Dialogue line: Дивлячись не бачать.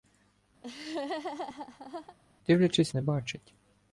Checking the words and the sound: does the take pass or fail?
fail